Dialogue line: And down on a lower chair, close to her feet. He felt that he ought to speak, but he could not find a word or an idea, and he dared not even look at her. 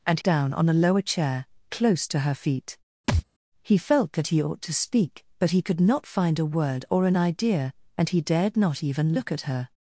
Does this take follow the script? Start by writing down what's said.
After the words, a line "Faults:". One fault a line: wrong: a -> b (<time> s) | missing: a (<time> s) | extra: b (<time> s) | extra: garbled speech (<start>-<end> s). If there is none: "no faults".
And down on a lower chair, close to her feet. He felt that he ought to speak, but he could not find a word or an idea, and he dared not even look at her.
Faults:
no faults